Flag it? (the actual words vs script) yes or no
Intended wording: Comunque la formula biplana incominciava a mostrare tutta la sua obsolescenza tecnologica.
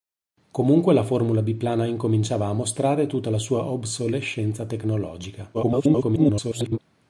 yes